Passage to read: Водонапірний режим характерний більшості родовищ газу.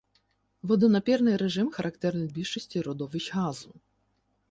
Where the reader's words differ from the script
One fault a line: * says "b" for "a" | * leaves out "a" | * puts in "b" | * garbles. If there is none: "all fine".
all fine